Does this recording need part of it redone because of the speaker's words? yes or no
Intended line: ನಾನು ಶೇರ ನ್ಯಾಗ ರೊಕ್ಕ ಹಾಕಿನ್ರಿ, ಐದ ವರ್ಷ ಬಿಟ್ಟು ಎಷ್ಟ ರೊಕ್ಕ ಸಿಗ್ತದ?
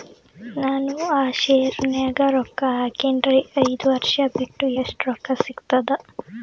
yes